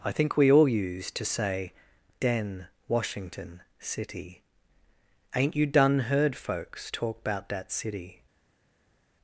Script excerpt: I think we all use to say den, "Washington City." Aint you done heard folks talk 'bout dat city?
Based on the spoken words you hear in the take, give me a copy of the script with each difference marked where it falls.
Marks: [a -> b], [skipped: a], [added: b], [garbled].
I think we all use to say den, "Washington City." Aint you done heard folks talk 'bout dat city?